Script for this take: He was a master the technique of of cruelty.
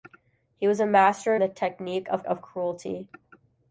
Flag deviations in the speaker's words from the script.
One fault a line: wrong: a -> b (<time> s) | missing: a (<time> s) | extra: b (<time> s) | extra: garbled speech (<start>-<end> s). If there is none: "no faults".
no faults